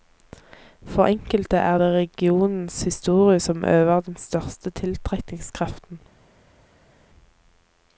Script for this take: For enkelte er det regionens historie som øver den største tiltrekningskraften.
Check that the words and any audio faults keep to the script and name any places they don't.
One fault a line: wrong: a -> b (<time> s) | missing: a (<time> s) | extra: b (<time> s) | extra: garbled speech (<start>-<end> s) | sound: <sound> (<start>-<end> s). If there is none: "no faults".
no faults